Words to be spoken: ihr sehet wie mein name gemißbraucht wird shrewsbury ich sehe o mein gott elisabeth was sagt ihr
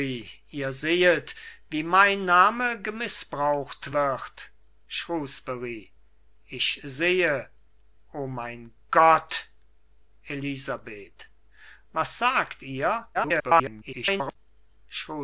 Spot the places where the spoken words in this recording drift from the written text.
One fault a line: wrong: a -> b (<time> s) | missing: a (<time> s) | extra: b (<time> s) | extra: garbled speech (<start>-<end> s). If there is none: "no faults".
extra: garbled speech (13.1-14.4 s)